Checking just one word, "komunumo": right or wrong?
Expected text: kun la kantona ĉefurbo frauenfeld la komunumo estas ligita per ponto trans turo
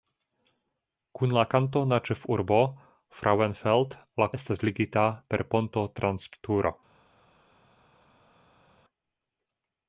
wrong